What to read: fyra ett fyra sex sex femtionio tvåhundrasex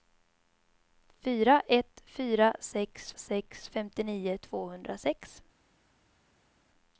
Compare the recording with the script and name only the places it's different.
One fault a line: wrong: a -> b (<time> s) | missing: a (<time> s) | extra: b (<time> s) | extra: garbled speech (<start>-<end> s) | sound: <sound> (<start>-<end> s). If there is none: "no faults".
no faults